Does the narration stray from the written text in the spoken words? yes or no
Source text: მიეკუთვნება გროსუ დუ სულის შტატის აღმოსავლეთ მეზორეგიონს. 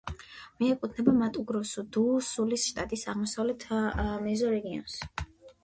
yes